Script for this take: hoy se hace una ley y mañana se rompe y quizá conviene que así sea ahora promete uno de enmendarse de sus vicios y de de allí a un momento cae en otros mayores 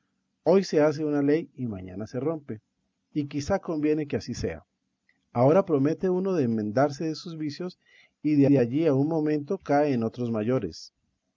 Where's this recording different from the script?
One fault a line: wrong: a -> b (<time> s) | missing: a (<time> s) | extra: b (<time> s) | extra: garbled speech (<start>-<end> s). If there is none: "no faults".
no faults